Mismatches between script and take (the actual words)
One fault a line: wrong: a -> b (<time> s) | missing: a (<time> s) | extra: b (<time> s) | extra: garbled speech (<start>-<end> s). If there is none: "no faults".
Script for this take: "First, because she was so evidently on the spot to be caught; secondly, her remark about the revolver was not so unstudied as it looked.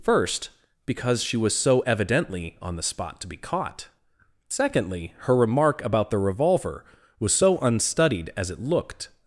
missing: not (7.3 s)